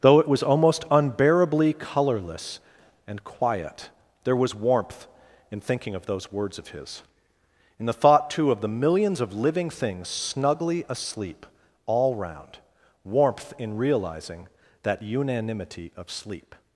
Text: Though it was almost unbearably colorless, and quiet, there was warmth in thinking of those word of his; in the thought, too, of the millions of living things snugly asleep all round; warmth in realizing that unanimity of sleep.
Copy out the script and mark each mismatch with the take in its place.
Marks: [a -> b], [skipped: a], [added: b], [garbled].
Though it was almost unbearably colorless, and quiet, there was warmth in thinking of those [word -> words] of his; in the thought, too, of the millions of living things snugly asleep all round; warmth in realizing that unanimity of sleep.